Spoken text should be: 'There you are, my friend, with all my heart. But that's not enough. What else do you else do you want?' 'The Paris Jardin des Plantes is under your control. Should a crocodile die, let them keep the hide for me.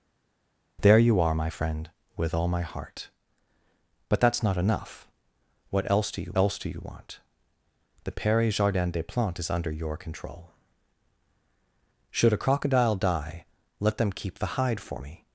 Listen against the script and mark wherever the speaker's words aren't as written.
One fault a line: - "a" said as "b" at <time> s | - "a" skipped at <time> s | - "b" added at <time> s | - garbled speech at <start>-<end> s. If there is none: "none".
none